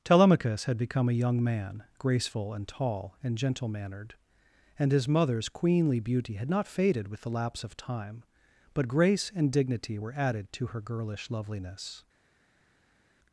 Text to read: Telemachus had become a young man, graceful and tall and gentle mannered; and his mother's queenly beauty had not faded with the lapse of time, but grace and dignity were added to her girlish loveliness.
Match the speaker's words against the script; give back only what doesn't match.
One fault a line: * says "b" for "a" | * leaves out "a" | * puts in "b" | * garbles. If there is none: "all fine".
all fine